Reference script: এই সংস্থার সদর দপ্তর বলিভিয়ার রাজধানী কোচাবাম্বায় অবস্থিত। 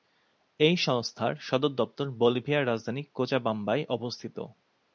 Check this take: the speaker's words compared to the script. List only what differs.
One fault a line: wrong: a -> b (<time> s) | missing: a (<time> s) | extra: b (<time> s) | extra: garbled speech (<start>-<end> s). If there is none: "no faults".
no faults